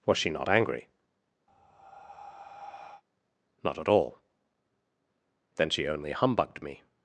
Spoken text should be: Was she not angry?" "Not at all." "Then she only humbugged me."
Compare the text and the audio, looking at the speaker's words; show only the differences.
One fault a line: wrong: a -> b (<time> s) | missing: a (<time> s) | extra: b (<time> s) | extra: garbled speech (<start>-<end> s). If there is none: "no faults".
no faults